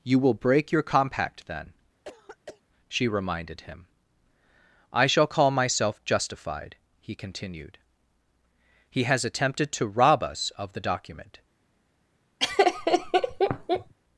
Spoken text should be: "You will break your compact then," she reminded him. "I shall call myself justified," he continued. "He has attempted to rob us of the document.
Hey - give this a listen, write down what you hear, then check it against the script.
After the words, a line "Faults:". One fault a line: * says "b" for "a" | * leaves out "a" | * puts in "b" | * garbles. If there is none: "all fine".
"You will break your compact then," she reminded him. "I shall call myself justified," he continued. "He has attempted to rob us of the document.
Faults:
all fine